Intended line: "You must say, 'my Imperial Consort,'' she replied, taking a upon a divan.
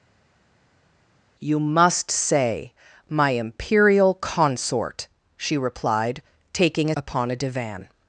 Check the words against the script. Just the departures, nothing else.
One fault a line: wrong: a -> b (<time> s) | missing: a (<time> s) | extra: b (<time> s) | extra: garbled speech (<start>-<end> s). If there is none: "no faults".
no faults